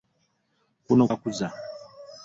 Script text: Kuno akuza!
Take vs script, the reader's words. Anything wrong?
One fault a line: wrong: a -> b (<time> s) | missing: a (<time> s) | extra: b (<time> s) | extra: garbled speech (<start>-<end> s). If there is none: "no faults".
no faults